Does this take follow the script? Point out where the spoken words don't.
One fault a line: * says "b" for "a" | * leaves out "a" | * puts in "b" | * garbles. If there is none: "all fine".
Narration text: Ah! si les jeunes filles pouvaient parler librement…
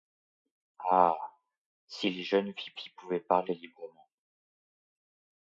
* puts in "filles"